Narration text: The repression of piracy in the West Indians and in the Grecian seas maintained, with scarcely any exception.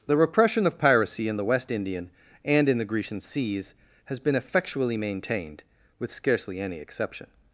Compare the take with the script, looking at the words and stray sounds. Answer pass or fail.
fail